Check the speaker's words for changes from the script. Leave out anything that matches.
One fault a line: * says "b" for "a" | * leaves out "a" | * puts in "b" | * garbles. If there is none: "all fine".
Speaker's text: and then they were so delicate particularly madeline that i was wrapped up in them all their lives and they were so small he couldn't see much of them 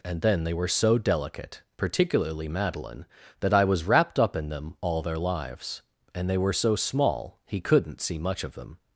all fine